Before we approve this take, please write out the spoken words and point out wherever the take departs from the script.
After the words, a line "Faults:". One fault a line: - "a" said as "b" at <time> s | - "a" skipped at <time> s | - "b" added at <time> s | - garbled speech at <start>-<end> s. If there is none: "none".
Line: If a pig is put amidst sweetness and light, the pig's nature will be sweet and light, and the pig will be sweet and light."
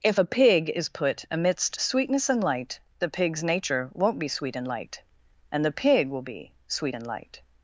If a pig is put amidst sweetness and light, the pig's nature won't be sweet and light, and the pig will be sweet and light."
Faults:
- "will" said as "won't" at 3.9 s